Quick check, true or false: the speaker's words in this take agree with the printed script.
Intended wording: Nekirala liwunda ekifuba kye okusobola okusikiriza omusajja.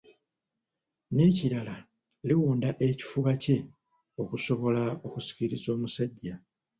true